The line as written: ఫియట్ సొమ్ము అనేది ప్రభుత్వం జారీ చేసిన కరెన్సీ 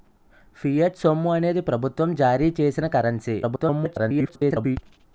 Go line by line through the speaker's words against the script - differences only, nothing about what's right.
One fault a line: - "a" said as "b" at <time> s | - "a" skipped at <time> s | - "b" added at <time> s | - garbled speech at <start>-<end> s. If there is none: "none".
- garbled speech at 3.4-4.8 s